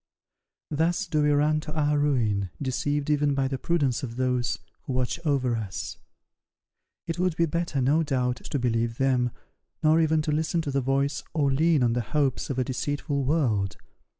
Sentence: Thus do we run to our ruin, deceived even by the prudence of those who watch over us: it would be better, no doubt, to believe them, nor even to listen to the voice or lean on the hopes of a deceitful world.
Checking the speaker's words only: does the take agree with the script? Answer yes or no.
yes